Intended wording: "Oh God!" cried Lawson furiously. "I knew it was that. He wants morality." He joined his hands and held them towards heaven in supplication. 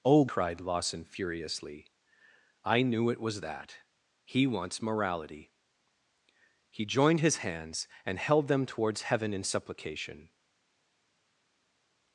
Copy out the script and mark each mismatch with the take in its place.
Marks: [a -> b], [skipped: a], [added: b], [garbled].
"Oh [skipped: God!"] cried Lawson furiously. "I knew it was that. He wants morality." He joined his hands and held them towards heaven in supplication.